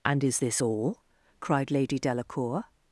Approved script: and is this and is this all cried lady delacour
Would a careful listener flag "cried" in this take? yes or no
no